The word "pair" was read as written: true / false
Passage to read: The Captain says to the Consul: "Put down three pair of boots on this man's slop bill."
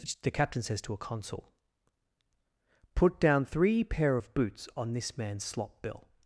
true